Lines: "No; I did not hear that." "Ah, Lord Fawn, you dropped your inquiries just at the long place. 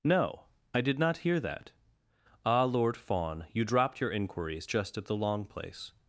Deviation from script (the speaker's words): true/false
false